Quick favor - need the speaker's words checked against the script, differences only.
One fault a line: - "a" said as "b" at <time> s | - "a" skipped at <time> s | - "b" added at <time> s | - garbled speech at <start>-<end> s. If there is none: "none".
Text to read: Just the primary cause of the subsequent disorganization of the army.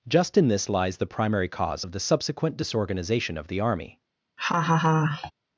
- "in this lies" added at 0.3 s